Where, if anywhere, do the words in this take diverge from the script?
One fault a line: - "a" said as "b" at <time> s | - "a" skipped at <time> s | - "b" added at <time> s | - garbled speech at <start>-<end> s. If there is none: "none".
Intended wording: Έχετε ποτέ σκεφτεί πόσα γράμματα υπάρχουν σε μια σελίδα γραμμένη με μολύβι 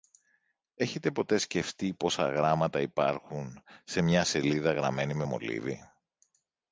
none